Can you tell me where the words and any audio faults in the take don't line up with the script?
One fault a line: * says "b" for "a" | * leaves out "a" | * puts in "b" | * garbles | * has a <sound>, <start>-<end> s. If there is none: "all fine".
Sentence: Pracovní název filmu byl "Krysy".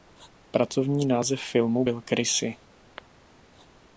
all fine